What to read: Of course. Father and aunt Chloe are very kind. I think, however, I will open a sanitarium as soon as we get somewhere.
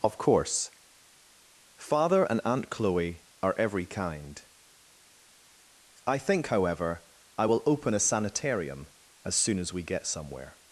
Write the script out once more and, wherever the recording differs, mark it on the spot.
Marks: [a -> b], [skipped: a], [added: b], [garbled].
Of course. Father and aunt Chloe are [very -> every] kind. I think, however, I will open a sanitarium as soon as we get somewhere.